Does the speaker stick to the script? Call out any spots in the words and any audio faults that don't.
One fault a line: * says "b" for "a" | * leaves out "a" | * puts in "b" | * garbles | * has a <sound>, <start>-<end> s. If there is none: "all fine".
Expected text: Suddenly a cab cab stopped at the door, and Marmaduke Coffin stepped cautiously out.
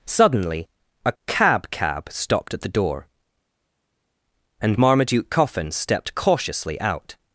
all fine